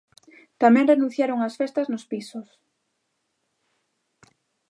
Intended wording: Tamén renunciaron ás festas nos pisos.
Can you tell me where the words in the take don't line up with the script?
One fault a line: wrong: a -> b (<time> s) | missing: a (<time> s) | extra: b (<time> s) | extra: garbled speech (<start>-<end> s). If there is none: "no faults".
no faults